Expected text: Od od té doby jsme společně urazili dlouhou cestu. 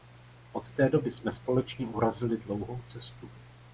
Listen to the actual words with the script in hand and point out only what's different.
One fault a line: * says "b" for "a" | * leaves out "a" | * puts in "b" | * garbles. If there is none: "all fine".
* leaves out "od"